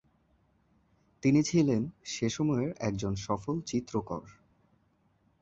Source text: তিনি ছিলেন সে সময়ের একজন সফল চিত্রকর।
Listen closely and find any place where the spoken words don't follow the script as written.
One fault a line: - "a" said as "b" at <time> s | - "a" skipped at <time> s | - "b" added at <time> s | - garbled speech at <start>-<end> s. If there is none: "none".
none